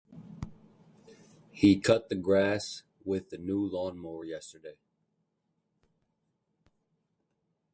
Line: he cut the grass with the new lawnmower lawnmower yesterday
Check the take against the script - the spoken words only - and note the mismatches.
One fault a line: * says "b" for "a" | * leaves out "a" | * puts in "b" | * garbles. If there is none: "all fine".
* leaves out "lawnmower"